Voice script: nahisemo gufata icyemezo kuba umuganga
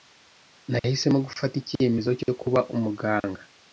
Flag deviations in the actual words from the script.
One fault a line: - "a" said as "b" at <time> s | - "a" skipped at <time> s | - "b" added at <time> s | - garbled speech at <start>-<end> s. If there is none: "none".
- "cyo" added at 2.2 s